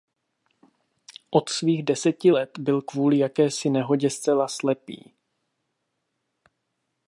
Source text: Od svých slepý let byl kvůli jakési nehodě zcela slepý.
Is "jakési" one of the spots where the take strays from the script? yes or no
no